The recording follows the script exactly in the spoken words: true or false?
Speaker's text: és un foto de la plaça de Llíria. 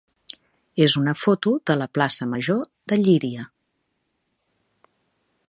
false